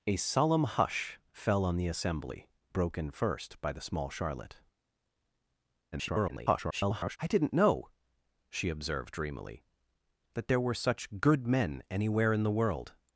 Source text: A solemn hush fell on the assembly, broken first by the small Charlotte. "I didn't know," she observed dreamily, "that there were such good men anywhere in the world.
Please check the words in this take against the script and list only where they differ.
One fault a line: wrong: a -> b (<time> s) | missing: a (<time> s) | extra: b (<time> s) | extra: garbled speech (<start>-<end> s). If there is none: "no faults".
extra: garbled speech (5.9-7.2 s)